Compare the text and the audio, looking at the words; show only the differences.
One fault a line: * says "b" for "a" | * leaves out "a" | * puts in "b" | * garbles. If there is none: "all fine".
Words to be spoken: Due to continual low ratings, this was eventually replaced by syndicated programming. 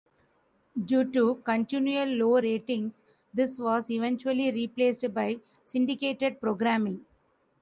all fine